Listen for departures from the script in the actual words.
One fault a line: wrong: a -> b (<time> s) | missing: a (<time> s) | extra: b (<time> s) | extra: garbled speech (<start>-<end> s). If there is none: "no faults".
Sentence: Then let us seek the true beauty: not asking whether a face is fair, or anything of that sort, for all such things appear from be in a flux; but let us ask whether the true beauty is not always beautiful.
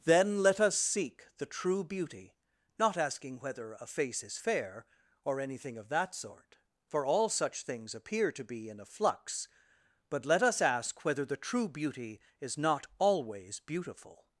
wrong: from -> to (8.3 s)